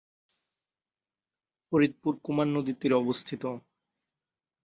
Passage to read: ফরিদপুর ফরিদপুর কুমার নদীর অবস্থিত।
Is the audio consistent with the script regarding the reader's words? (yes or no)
no